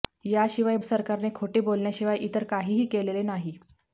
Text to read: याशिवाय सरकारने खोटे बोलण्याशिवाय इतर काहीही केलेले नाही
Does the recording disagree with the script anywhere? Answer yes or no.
no